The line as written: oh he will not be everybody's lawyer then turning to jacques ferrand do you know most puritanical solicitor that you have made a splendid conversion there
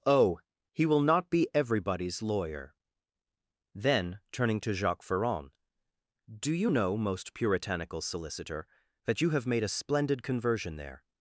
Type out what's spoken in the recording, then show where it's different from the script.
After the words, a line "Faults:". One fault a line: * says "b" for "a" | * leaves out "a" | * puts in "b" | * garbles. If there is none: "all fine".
oh he will not be everybody's lawyer then turning to jacques ferrand do you know most puritanical solicitor that you have made a splendid conversion there
Faults:
all fine